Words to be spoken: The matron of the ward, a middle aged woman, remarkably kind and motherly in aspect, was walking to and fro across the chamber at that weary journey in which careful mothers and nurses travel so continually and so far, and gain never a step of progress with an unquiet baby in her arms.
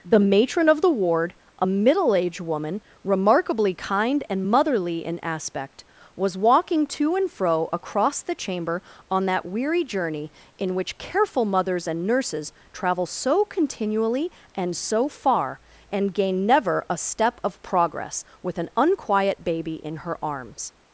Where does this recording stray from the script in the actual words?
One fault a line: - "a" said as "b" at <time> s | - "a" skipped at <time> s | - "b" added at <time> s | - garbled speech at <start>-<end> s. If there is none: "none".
- "at" said as "on" at 9.1 s